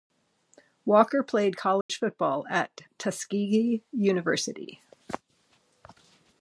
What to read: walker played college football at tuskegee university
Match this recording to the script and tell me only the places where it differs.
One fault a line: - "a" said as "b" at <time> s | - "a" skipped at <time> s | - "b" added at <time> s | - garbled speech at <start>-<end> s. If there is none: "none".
none